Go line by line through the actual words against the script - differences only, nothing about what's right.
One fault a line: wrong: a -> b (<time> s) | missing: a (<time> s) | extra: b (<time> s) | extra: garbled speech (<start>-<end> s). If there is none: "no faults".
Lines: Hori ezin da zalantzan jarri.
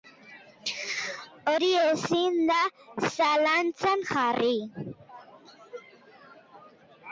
no faults